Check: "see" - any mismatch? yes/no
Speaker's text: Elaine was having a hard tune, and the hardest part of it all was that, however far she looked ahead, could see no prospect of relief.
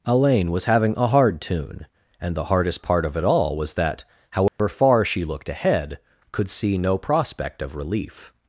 no